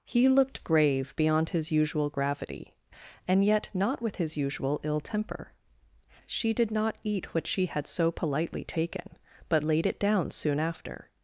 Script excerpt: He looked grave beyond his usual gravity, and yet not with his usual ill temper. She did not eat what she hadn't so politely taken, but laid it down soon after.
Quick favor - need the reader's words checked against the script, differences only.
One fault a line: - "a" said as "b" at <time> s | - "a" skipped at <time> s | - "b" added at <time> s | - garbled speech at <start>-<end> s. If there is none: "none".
- "hadn't" said as "had" at 7.7 s